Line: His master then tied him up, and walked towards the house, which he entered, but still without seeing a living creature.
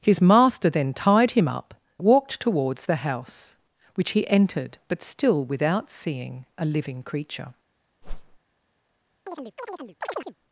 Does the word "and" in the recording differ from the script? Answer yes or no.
yes